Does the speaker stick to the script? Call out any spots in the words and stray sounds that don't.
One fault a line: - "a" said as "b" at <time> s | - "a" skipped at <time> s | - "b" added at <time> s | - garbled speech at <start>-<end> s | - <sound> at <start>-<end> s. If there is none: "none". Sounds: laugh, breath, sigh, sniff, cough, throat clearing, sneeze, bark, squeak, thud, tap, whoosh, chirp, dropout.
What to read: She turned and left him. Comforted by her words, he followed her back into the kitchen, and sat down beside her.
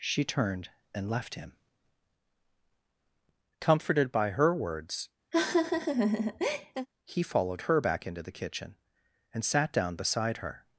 - laugh at 5.3-6.9 s